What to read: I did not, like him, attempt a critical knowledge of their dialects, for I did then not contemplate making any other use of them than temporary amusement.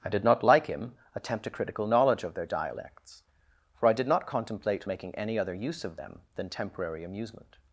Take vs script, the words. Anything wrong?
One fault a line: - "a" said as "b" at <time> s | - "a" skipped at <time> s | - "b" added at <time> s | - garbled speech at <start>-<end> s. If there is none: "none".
- "then" skipped at 4.1 s